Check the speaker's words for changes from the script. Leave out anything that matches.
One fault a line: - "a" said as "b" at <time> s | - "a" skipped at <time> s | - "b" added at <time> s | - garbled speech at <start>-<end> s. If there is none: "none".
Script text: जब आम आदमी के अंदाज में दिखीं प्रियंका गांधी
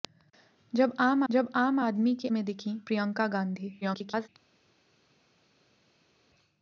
- "जब आम" added at 1.3 s
- "अंदाज" skipped at 2.3 s
- garbled speech at 3.8-4.3 s